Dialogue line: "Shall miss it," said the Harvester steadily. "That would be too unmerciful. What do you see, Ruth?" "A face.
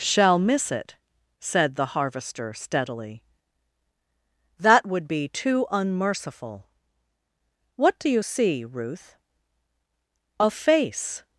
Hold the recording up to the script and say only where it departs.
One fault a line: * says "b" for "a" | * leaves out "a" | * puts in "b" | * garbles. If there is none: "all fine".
all fine